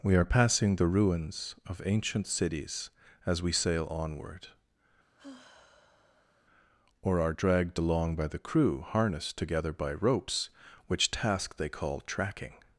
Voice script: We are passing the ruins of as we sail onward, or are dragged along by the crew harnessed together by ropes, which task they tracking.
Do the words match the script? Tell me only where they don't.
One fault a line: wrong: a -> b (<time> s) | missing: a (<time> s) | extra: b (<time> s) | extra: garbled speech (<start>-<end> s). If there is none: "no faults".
extra: ancient cities (1.9 s)
extra: call (11.7 s)